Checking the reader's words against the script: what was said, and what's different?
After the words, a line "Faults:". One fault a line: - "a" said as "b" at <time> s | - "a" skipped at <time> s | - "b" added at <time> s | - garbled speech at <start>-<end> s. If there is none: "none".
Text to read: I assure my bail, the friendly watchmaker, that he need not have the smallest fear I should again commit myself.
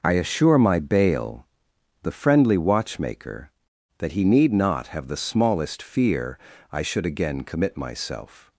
I assure my bail, the friendly watchmaker, that he need not have the smallest fear I should again commit myself.
Faults:
none